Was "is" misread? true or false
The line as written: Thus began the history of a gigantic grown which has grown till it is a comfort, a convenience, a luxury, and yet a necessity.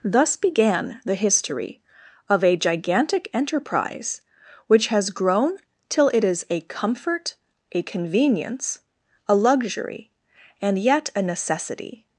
false